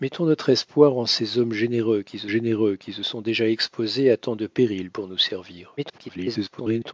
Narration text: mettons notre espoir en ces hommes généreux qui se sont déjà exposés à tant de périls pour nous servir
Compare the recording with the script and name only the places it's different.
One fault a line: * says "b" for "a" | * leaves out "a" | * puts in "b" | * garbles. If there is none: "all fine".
* puts in "généreux qui se"
* garbles